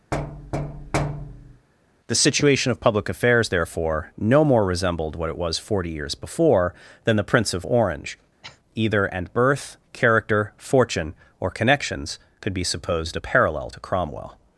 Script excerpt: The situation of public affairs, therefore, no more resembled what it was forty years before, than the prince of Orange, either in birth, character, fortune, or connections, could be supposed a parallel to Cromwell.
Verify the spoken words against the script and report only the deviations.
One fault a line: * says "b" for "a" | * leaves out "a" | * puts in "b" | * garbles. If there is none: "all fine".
* says "and" for "in"